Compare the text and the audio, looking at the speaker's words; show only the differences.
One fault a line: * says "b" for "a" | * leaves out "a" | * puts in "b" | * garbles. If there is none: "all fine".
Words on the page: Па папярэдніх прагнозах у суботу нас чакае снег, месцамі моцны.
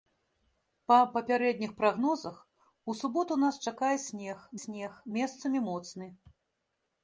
* puts in "снег"